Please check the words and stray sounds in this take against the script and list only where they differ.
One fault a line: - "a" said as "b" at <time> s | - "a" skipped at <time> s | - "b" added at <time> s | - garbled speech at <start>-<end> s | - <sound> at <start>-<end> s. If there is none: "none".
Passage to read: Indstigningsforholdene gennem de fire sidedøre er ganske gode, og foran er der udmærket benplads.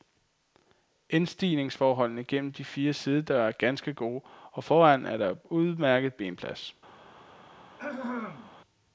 - throat clearing at 7.8-8.5 s